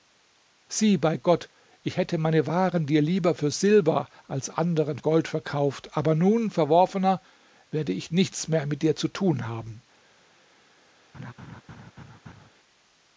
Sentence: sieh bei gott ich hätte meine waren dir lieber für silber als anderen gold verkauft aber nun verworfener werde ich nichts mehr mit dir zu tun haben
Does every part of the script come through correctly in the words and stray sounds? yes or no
no